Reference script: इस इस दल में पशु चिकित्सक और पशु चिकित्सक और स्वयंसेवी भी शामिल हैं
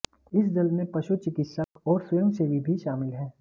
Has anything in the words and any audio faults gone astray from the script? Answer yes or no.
yes